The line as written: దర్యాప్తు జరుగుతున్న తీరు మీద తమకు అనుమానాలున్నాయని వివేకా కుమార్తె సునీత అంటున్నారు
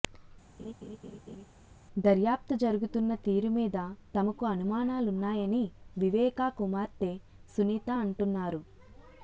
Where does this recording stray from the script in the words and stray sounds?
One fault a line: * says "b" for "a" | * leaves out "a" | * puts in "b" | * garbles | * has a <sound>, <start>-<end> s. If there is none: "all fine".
* has a laugh, 0.6-1.5 s